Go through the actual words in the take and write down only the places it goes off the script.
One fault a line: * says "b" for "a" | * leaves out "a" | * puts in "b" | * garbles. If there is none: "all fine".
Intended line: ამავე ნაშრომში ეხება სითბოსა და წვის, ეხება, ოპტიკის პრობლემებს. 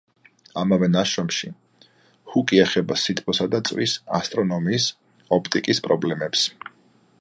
* puts in "ჰუკი"
* says "ასტრონომიის" for "ეხება"